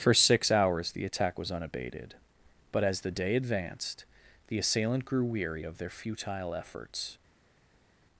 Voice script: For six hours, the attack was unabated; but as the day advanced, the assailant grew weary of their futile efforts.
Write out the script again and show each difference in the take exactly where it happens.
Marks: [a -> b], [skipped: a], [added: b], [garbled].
For six hours, the attack was unabated; but as the day advanced, the assailant grew weary of their futile efforts.